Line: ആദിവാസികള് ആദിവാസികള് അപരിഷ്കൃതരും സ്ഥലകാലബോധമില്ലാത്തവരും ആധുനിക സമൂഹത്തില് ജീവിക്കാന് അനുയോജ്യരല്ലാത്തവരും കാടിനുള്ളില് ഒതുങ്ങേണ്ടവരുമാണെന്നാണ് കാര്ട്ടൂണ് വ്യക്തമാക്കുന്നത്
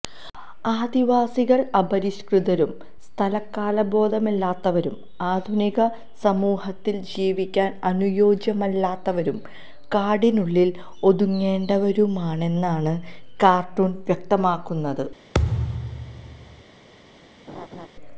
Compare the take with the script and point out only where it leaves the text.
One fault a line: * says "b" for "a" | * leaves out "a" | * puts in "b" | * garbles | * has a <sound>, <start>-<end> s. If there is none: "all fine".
* leaves out "ആദിവാസികള്"
* has a thud, 15.3-16.6 s
* has a laugh, 17.5-17.9 s